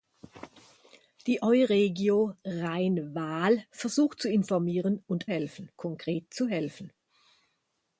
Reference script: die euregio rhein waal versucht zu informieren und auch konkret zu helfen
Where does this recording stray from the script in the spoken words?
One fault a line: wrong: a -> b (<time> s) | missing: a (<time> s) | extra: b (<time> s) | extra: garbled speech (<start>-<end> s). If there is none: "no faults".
wrong: auch -> helfen (5.3 s)